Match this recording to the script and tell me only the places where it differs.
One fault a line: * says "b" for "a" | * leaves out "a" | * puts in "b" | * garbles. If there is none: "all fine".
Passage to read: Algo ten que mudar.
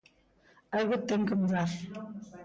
all fine